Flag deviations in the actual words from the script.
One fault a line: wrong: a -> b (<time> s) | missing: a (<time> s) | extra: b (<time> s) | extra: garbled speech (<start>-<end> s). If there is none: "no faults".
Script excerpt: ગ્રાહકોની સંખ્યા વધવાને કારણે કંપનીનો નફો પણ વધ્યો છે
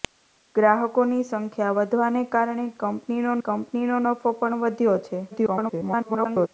extra: કંપનીનો (3.4 s)
extra: garbled speech (5.3-6.5 s)